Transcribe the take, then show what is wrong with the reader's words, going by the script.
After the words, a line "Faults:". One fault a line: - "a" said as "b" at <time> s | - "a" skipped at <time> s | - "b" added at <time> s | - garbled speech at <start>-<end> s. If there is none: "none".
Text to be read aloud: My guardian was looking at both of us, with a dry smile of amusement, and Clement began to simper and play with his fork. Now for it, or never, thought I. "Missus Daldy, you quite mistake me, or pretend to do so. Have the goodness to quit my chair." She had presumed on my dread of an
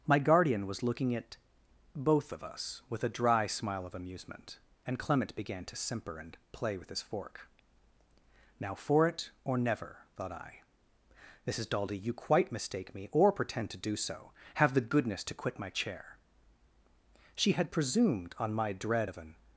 My guardian was looking at both of us, with a dry smile of amusement, and Clement began to simper and play with his fork. Now for it, or never, thought I. "Missus Daldy, you quite mistake me, or pretend to do so. Have the goodness to quit my chair." She had presumed on my dread of an
Faults:
none